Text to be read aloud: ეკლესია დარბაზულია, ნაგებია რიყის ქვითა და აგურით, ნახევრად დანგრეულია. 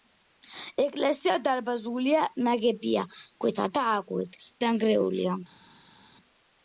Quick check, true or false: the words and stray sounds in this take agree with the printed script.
false